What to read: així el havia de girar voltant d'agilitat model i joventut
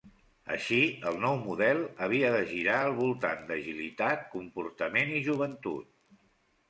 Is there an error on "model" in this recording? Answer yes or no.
yes